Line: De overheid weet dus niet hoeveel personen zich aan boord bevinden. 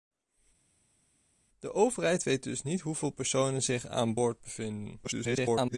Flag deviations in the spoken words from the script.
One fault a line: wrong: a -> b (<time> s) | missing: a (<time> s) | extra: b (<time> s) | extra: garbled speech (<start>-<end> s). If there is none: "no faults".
extra: garbled speech (5.0-5.8 s)